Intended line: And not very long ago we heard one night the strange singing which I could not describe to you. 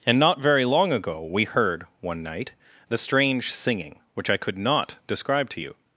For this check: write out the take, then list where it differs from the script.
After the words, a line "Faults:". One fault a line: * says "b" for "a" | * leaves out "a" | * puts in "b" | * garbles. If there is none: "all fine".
And not very long ago we heard one night the strange singing which I could not describe to you.
Faults:
all fine